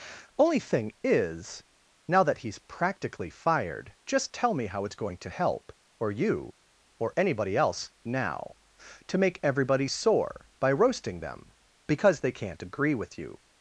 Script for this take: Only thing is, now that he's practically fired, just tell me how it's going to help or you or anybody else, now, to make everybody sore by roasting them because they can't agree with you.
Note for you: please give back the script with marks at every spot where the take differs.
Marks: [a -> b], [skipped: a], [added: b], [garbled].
Only thing is, now that he's practically fired, just tell me how it's going to help or you or anybody else, now, to make everybody sore by roasting them because they can't agree with you.